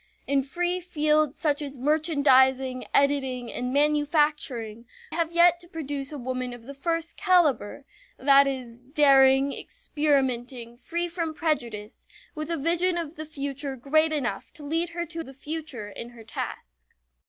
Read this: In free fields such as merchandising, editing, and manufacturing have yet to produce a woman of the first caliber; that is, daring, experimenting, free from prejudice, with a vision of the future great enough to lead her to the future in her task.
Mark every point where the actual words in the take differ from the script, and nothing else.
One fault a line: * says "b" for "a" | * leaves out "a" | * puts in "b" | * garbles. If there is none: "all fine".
all fine